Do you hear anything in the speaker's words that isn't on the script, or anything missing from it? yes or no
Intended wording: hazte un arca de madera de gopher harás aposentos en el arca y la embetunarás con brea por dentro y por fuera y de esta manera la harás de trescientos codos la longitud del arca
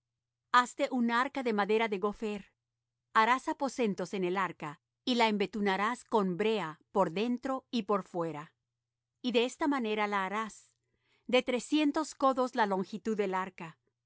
no